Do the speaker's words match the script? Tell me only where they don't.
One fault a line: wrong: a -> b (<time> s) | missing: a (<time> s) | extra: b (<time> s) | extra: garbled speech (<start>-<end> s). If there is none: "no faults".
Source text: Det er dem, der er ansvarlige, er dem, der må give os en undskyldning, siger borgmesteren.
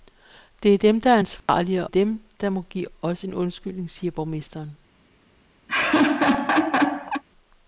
no faults